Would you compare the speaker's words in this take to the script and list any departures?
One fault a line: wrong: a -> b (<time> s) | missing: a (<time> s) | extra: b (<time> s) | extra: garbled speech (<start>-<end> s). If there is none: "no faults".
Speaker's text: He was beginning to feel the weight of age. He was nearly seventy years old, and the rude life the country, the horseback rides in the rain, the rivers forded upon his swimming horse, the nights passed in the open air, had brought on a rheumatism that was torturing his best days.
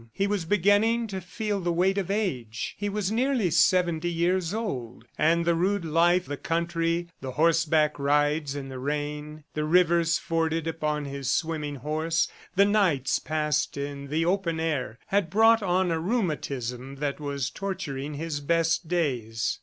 no faults